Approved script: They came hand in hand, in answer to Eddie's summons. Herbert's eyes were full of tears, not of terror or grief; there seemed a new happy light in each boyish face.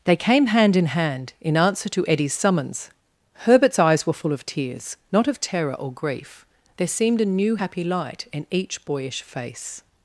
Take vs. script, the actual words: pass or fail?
pass